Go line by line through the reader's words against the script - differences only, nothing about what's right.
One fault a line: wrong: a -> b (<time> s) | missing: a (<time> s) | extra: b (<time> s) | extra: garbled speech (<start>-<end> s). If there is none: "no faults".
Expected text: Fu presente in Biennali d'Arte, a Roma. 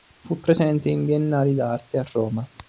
no faults